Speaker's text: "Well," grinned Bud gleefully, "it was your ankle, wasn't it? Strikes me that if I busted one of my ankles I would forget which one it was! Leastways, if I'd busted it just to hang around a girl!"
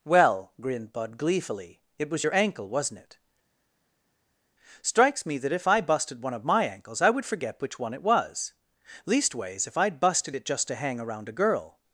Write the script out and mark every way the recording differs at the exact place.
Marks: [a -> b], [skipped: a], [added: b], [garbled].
"Well," grinned Bud gleefully, "it was your ankle, wasn't it? Strikes me that if I busted one of my ankles I would forget which one it was! Leastways, if I'd busted it just to hang around a girl!"